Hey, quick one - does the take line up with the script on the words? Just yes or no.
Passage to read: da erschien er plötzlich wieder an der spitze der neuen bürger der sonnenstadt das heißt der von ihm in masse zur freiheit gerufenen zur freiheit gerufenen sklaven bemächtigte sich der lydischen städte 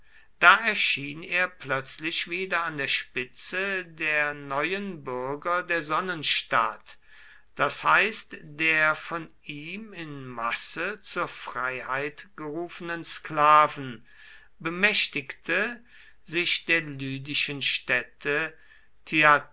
no